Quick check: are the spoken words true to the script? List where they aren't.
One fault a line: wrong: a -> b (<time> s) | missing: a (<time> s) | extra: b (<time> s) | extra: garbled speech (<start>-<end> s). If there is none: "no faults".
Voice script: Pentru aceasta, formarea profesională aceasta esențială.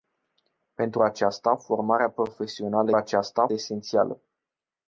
no faults